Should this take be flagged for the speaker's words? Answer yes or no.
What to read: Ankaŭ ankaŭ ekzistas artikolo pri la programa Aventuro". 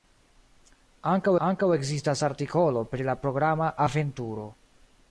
no